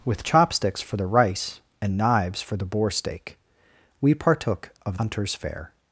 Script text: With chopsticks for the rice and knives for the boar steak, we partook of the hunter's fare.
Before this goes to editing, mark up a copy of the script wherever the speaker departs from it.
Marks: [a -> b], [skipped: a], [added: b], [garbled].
With chopsticks for the rice and knives for the boar steak, we partook of [skipped: the] hunter's fare.